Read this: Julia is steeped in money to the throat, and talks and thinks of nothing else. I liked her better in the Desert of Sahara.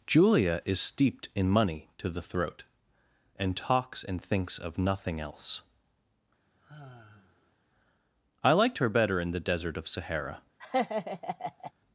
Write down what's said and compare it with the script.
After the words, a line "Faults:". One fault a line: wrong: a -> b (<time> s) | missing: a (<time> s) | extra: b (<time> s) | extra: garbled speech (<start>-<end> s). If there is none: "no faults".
Julia is steeped in money to the throat, and talks and thinks of nothing else. I liked her better in the Desert of Sahara.
Faults:
no faults